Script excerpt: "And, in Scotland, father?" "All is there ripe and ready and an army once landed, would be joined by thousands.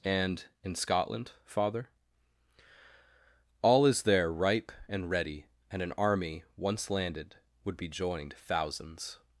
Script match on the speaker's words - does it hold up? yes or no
no